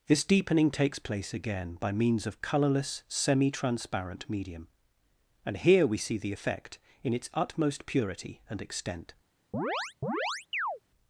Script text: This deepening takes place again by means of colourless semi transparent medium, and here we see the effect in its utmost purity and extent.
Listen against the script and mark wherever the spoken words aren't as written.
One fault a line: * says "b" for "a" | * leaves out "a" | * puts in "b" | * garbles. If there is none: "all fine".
all fine